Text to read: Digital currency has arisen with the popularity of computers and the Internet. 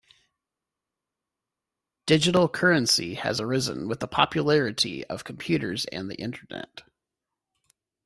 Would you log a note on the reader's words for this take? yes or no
no